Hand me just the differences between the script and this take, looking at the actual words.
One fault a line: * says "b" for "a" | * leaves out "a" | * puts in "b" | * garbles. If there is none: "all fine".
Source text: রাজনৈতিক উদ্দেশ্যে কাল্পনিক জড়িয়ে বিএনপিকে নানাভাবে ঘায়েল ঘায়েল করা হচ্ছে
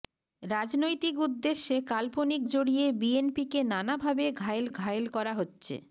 all fine